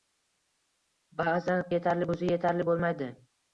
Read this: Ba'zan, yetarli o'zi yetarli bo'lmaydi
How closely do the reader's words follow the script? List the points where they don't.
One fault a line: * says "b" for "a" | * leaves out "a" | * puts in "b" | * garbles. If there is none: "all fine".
all fine